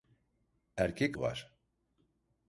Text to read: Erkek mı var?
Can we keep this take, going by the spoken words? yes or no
yes